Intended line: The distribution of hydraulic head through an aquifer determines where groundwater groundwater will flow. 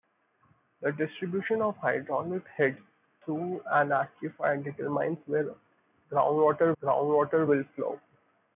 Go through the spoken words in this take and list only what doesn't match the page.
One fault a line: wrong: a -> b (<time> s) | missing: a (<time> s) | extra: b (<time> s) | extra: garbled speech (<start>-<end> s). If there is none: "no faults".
no faults